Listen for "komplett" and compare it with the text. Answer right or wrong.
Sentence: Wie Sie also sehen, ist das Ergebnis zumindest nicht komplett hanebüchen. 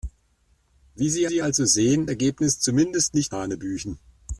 wrong